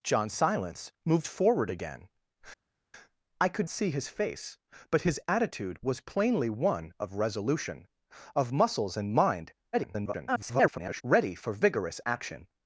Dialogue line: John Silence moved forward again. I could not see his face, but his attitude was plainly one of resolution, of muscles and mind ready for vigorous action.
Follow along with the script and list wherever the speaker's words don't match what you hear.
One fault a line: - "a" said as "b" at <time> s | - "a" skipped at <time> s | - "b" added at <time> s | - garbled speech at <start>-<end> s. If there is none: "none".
- "not" skipped at 3.7 s
- garbled speech at 9.7-11.0 s